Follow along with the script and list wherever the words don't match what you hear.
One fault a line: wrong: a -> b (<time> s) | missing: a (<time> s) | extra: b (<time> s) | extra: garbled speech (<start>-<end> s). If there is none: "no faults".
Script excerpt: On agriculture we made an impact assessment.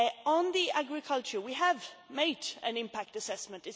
extra: have (1.5 s)